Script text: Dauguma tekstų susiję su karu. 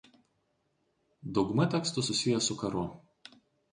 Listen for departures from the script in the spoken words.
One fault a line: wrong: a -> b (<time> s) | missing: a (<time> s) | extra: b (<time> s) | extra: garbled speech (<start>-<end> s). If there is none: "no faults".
no faults